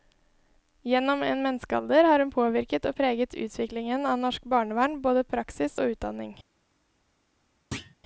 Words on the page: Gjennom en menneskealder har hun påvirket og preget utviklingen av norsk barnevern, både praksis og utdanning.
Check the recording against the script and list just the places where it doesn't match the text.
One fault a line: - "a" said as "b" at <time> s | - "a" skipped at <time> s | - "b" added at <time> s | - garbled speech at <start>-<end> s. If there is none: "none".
none